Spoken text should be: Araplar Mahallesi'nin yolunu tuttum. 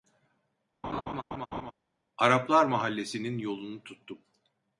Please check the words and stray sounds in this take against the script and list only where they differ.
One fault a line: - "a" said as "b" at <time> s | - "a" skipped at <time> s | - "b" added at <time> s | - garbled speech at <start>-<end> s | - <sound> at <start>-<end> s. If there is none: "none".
- laugh at 0.8-1.7 s